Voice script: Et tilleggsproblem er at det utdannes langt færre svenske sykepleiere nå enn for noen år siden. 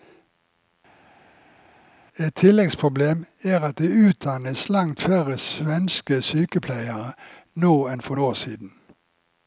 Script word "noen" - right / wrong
wrong